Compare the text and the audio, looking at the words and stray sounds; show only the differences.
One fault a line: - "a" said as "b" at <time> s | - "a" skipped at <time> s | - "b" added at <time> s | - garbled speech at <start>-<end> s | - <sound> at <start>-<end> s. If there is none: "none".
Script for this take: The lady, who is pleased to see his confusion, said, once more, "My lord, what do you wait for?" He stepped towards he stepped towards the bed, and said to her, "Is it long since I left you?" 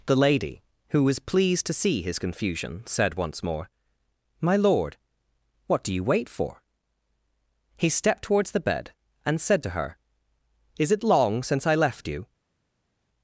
- "is" said as "was" at 1.0 s
- "he stepped towards" skipped at 8.5 s